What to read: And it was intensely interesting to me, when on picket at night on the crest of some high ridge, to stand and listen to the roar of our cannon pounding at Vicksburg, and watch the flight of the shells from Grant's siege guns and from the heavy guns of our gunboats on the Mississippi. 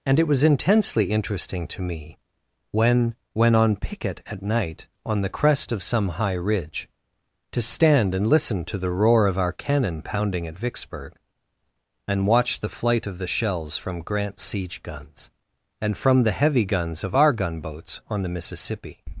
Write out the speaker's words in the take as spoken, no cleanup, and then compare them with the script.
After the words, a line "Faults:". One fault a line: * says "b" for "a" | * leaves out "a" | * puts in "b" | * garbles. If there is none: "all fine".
And it was intensely interesting to me, when when on picket at night on the crest of some high ridge, to stand and listen to the roar of our cannon pounding at Vicksburg, and watch the flight of the shells from Grant's siege guns and from the heavy guns of our gunboats on the Mississippi.
Faults:
* puts in "when"